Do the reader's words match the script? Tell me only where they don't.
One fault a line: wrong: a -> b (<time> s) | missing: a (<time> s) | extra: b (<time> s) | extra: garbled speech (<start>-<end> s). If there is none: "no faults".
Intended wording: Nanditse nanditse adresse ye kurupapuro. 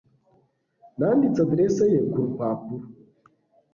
missing: nanditse (1.4 s)